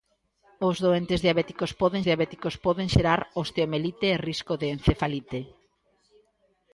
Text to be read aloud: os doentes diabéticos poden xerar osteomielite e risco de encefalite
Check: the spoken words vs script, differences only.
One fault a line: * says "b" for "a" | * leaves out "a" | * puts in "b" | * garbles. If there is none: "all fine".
* puts in "diabéticos poden"